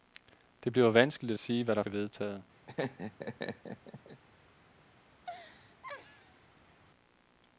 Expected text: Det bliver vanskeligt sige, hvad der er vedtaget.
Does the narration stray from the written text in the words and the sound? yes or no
yes